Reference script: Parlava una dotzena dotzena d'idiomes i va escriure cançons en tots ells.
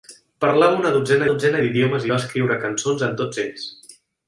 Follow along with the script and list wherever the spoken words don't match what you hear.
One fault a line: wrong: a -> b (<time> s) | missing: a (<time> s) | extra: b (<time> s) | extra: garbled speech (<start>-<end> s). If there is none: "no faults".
no faults